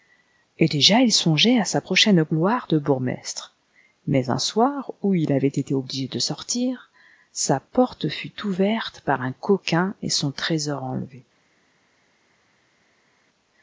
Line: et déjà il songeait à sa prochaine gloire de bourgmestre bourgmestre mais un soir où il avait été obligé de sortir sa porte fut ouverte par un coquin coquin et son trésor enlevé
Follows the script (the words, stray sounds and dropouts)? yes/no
no